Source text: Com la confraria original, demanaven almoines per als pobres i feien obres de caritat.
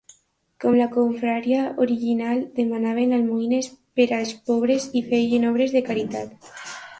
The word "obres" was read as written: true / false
true